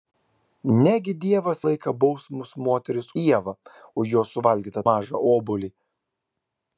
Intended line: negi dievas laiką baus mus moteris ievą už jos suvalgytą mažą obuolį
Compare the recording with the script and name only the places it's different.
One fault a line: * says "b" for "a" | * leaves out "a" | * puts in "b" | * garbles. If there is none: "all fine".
all fine